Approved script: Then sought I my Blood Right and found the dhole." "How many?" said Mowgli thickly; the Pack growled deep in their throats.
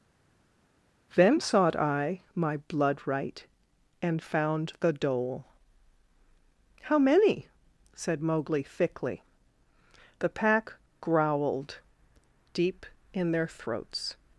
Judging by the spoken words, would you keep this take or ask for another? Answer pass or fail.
pass